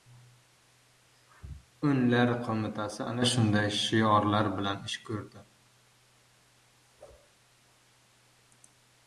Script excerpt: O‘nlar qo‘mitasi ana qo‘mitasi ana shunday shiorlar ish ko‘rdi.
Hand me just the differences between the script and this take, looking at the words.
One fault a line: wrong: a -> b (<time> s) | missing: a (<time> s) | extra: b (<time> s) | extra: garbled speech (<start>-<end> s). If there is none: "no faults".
missing: qo‘mitasi ana (3.3 s)
extra: bilan (4.6 s)